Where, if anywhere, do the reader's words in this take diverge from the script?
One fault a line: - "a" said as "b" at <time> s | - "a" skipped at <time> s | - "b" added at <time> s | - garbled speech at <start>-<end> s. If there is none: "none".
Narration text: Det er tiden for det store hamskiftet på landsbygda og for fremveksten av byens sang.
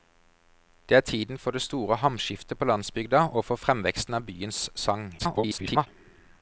- garbled speech at 5.2-5.9 s